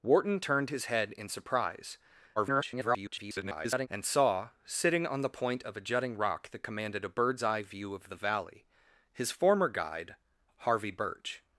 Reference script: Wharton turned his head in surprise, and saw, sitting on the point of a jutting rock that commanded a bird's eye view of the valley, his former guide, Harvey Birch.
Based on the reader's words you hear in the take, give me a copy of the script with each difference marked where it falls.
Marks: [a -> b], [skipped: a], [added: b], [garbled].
Wharton turned his head in surprise, [garbled] and saw, sitting on the point of a jutting rock that commanded a bird's eye view of the valley, his former guide, Harvey Birch.